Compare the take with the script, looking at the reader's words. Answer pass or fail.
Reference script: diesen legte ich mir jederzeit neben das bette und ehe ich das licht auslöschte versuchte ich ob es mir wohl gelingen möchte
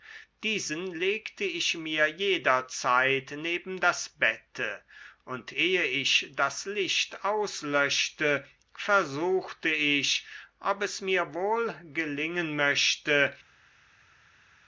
pass